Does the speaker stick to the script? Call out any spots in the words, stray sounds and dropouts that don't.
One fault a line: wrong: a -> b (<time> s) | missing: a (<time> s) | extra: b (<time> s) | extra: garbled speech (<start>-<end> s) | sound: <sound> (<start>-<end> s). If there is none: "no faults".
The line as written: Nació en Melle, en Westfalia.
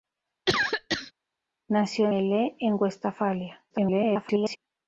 sound: cough (0.5-1.1 s)
missing: en (2.1 s)
extra: garbled speech (3.7-4.6 s)